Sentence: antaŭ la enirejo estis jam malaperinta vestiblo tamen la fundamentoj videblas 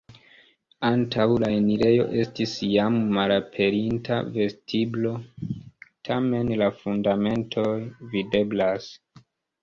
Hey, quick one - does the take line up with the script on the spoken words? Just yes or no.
yes